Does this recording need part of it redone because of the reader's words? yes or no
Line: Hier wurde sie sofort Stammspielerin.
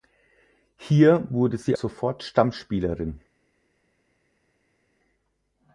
no